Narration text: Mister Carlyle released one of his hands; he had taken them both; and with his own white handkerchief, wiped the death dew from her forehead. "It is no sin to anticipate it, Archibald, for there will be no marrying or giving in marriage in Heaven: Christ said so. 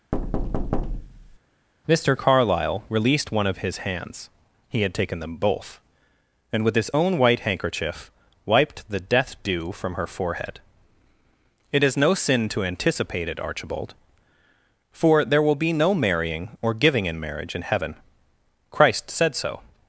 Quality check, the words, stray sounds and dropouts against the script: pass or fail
fail